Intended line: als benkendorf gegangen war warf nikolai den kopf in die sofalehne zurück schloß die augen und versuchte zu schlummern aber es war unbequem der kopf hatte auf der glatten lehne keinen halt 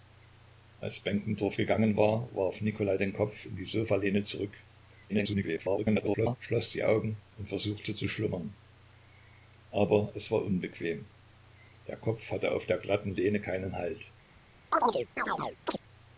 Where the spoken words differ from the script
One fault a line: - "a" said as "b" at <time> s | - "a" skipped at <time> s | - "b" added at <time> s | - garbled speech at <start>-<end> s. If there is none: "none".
- garbled speech at 5.1-6.4 s